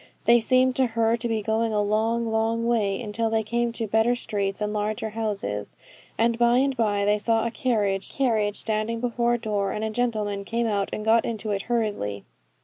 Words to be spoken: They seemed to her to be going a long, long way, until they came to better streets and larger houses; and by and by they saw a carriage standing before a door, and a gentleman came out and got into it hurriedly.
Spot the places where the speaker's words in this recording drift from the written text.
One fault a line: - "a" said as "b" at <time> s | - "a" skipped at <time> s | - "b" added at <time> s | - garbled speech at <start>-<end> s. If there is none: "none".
- "carriage" added at 8.1 s